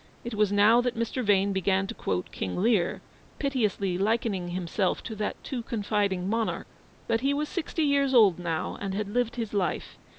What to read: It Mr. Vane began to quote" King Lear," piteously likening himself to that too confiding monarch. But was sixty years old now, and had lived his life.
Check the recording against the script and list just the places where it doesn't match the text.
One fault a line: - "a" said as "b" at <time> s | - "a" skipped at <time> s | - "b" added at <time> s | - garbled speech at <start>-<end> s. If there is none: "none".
- "was now that" added at 0.3 s
- "he" added at 7.2 s